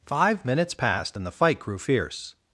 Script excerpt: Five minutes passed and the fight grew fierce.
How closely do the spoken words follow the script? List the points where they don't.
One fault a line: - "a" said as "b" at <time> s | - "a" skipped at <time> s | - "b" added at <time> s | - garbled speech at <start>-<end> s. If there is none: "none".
none